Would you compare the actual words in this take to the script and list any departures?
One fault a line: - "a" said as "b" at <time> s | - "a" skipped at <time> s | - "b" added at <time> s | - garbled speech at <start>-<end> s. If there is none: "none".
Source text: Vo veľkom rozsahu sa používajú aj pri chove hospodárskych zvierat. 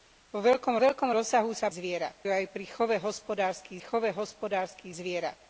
- "veľkom" added at 0.8 s
- "používajú" said as "zvierat" at 1.7 s
- "chove hospodárskych" added at 3.8 s